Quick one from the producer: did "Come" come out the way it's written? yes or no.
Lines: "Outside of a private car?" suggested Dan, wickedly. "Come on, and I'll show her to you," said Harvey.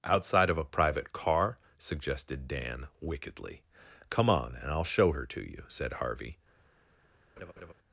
yes